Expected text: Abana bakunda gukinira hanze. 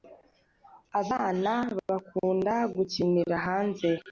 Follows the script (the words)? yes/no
yes